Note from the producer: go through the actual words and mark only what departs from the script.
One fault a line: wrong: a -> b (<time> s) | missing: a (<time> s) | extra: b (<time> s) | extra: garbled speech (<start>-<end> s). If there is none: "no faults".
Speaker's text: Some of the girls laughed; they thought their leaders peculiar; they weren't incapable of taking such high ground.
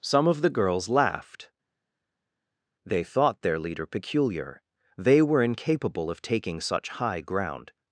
wrong: leaders -> leader (3.6 s)
wrong: weren't -> were (5.2 s)